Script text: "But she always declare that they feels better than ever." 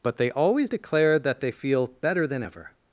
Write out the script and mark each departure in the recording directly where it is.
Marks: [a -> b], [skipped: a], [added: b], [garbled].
"But [she -> they] always declare that they [feels -> feel] better than ever."